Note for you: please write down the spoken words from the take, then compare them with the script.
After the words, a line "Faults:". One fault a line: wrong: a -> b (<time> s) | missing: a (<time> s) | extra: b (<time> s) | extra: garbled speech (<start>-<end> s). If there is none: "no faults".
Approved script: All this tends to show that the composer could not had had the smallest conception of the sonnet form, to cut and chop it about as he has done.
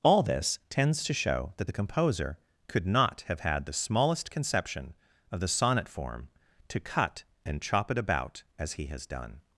All this tends to show that the composer could not have had the smallest conception of the sonnet form, to cut and chop it about as he has done.
Faults:
wrong: had -> have (3.3 s)